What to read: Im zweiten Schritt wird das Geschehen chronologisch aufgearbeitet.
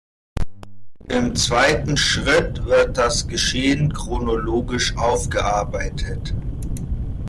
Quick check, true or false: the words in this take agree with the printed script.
true